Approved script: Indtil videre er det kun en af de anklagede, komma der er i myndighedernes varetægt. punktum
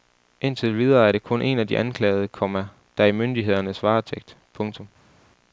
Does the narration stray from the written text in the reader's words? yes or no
no